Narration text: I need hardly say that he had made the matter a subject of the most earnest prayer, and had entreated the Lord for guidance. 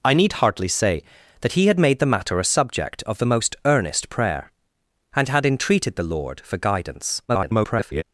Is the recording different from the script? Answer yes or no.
yes